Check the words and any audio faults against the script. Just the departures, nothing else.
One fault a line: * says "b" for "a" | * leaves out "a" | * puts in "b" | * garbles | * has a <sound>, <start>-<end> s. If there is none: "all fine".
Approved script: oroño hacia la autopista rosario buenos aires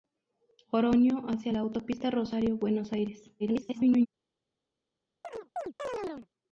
* garbles
* has a chirp, 5.2-6.3 s